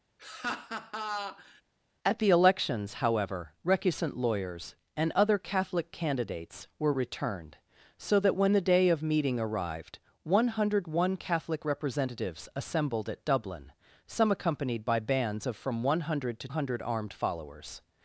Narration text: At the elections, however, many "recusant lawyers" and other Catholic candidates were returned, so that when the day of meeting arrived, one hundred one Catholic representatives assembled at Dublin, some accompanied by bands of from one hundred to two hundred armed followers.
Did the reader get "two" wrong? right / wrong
wrong